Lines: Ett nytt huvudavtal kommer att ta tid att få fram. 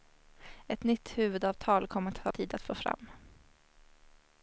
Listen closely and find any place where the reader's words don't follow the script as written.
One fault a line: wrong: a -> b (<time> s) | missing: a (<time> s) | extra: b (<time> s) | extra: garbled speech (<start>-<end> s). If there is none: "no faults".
no faults